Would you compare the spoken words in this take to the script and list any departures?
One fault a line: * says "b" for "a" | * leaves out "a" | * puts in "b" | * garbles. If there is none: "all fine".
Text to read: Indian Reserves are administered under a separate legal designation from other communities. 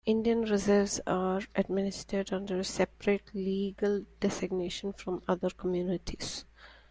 all fine